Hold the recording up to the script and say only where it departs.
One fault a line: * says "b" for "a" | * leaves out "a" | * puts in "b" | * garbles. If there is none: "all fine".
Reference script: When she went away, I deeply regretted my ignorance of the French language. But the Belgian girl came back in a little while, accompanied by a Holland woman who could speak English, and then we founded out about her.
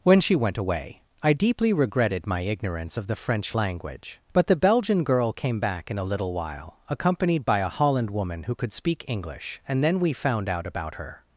* says "found" for "founded"